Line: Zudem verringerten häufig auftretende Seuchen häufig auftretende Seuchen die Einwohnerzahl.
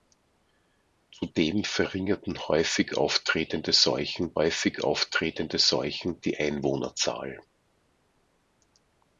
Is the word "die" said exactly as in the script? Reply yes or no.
yes